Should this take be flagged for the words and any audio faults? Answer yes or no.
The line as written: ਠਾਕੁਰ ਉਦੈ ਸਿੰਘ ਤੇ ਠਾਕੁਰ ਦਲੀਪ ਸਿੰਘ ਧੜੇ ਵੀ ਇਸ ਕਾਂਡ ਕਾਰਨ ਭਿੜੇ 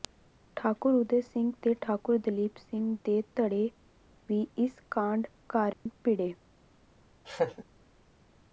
yes